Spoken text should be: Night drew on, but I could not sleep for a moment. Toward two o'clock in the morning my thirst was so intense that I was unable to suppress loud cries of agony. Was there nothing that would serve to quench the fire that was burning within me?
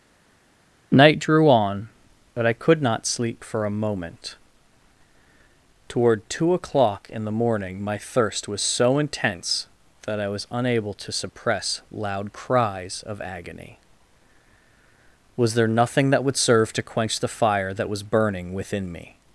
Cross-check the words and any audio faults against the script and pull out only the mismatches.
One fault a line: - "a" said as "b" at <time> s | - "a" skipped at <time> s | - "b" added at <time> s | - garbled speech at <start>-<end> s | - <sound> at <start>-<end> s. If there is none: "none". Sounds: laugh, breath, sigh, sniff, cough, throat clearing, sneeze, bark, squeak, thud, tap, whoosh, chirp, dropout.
none